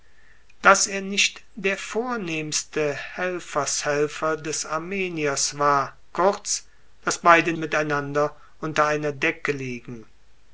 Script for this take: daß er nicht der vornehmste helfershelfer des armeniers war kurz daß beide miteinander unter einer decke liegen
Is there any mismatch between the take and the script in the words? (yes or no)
no